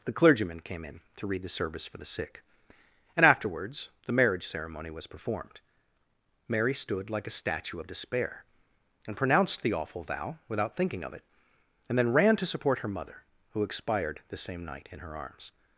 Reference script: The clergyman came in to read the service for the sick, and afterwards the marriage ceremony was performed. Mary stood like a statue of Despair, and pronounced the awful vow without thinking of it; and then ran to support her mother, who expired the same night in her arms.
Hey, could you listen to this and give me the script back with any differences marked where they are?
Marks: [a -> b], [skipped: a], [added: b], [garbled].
The clergyman came in to read the service for the sick, and afterwards the marriage ceremony was performed. Mary stood like a statue of Despair, and pronounced the awful vow without thinking of it; and then ran to support her mother, who expired the same night in her arms.